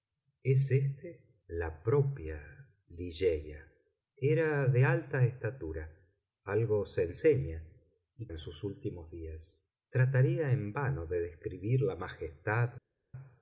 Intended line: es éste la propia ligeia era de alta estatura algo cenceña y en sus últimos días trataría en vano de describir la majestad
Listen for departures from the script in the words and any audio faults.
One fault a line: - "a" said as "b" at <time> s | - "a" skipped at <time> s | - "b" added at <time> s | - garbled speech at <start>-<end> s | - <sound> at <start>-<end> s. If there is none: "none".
none